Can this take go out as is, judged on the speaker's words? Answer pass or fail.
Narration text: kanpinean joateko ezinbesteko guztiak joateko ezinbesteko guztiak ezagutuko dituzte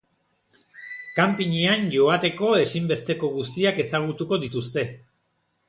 fail